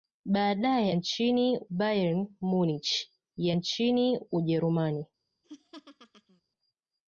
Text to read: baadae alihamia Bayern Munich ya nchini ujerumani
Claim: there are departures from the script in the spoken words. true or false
true